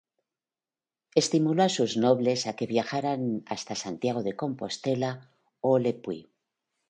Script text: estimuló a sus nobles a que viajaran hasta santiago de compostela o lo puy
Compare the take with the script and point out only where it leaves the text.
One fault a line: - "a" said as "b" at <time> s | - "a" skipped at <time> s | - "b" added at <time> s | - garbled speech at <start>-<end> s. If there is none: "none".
- "lo" said as "le" at 5.8 s